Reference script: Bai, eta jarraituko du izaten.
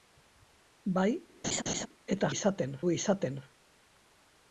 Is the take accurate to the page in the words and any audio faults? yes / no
no